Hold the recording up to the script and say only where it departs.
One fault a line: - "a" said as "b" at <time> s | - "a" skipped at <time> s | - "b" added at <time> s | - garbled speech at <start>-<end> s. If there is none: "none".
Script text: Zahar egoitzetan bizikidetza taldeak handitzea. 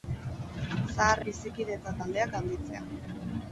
- "egoitzetan" skipped at 1.2 s